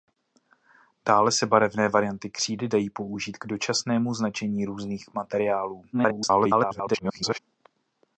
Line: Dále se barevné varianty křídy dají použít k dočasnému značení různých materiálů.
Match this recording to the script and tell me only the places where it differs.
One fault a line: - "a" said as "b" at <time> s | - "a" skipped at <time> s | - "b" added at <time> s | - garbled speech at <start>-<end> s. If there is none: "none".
- garbled speech at 5.9-7.4 s